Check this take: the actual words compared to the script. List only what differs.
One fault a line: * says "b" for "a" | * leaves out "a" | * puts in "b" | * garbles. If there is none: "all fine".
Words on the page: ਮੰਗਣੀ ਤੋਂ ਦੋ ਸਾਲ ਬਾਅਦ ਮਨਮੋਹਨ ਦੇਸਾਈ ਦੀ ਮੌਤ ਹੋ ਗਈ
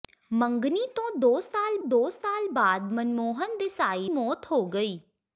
* puts in "ਦੋ ਸਾਲ"
* leaves out "ਦੀ"